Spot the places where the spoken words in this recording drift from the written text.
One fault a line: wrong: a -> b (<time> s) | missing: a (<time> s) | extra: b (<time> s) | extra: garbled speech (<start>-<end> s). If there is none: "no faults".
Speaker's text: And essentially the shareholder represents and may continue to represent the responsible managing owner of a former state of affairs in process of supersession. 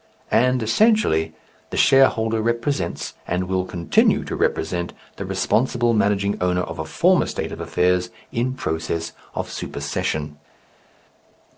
wrong: may -> will (3.4 s)